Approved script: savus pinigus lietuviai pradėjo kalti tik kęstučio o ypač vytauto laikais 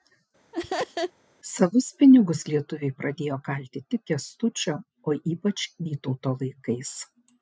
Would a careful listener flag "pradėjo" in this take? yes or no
no